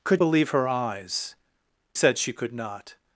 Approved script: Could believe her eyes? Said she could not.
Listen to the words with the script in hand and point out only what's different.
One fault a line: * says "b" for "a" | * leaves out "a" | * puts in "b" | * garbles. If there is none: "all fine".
all fine